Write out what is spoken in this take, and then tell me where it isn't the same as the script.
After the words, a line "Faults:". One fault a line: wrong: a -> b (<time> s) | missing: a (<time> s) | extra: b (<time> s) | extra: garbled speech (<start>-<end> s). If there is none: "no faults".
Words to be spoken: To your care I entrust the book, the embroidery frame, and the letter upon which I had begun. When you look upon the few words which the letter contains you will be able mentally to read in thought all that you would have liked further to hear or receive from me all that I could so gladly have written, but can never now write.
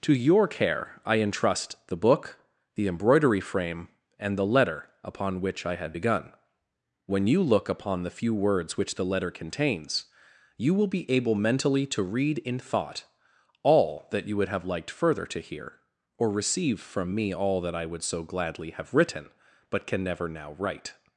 To your care I entrust the book, the embroidery frame, and the letter upon which I had begun. When you look upon the few words which the letter contains you will be able mentally to read in thought all that you would have liked further to hear or receive from me all that I would so gladly have written, but can never now write.
Faults:
wrong: could -> would (17.9 s)